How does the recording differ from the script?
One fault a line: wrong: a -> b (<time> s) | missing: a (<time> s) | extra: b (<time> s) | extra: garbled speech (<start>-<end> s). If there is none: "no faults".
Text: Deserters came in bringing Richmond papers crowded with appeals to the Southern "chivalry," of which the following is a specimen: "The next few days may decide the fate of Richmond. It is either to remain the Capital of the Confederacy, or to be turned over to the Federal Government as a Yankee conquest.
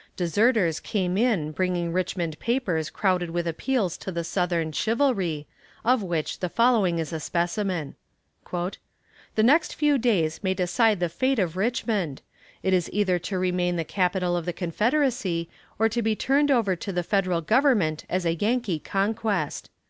no faults